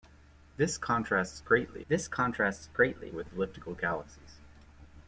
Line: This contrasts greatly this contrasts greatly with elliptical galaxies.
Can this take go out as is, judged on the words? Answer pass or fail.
pass